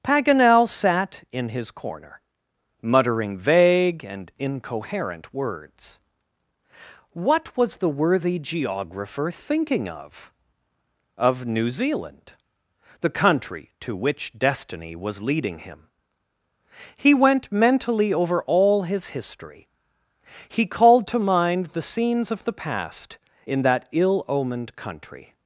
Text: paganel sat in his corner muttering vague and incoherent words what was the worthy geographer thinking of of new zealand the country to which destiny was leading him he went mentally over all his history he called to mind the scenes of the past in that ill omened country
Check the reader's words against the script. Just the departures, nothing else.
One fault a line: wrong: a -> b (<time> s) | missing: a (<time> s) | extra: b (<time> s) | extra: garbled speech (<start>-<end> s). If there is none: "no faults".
no faults